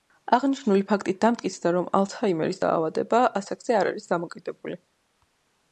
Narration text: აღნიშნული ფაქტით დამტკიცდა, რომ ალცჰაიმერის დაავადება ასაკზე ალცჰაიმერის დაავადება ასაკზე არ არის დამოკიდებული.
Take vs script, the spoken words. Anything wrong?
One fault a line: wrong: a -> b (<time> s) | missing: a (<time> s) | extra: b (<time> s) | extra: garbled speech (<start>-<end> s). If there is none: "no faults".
missing: ალცჰაიმერის დაავადება ასაკზე (3.8 s)